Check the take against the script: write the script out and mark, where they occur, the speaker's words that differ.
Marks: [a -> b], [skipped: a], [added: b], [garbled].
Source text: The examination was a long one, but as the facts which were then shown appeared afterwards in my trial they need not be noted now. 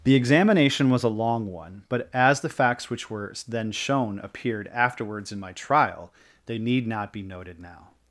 The examination was a long one, but as the facts which were then shown appeared afterwards in my trial they need not be noted now.